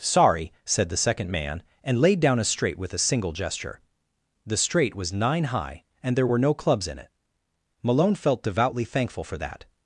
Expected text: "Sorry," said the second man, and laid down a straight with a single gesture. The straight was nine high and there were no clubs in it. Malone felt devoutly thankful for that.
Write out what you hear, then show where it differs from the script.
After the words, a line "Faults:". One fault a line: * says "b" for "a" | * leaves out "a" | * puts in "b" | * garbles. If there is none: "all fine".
"Sorry," said the second man, and laid down a straight with a single gesture. The straight was nine high and there were no clubs in it. Malone felt devoutly thankful for that.
Faults:
all fine